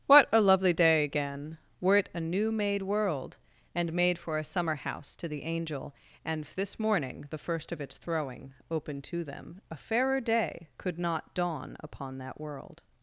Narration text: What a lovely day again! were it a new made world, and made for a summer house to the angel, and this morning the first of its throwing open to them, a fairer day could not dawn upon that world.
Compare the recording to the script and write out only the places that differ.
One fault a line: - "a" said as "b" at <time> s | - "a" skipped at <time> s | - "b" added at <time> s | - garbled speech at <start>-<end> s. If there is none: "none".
none